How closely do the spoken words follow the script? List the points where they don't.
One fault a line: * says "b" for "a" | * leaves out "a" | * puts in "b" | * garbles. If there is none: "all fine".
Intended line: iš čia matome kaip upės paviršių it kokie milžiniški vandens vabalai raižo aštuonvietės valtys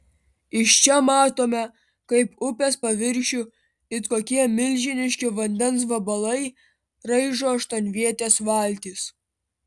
all fine